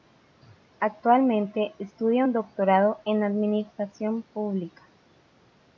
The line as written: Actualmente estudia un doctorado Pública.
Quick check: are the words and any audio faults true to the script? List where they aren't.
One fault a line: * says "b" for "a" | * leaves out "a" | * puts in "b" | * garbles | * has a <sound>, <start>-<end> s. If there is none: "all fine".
* puts in "en Administración"